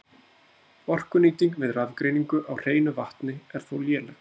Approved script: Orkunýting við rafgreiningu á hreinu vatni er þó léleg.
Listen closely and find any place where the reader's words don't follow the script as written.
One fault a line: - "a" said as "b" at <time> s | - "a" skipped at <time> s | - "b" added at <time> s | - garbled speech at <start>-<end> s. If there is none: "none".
none